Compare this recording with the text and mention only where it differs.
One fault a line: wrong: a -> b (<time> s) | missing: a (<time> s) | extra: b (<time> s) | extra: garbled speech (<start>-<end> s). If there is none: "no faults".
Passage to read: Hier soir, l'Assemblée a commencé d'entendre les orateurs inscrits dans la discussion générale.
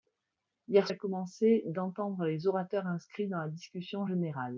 missing: soir l'Assemblée (0.9 s)